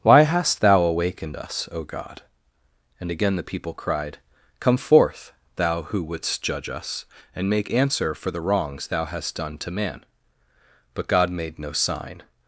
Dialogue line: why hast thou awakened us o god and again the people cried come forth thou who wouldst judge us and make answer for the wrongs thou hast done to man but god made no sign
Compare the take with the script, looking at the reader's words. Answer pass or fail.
pass